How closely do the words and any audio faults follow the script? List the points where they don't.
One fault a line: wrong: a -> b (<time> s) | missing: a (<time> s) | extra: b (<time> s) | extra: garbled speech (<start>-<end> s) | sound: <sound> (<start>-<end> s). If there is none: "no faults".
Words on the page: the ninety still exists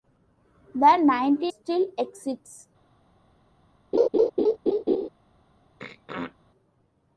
sound: laugh (3.9-5.1 s)
sound: throat clearing (5.8-6.4 s)